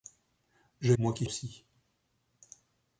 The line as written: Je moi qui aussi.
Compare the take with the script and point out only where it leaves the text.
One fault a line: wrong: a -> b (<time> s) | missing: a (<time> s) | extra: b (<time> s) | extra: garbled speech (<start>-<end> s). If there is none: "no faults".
no faults